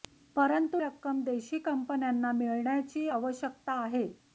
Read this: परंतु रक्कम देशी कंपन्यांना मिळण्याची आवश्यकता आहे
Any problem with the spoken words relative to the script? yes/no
no